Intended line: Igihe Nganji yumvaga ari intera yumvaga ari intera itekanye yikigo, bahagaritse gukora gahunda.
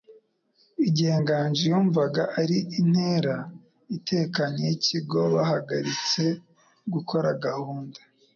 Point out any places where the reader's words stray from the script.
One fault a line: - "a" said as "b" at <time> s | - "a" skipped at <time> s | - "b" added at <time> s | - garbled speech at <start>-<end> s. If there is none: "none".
- "yumvaga ari intera" skipped at 3.3 s